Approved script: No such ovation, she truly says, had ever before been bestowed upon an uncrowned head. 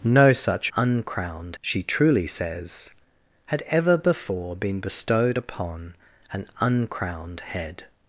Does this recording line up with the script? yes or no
no